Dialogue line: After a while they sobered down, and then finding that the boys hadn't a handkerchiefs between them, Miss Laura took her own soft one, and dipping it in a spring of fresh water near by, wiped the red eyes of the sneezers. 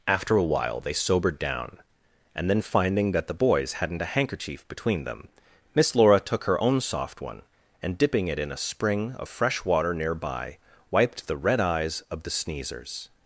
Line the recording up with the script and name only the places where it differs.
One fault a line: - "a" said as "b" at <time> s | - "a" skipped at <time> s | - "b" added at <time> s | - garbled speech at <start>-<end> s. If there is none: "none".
- "handkerchiefs" said as "handkerchief" at 4.0 s